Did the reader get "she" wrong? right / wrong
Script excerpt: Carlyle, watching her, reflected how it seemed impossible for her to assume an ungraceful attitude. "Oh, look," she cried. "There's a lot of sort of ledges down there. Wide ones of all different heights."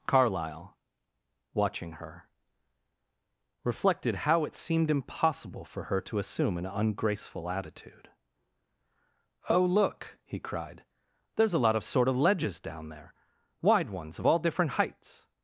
wrong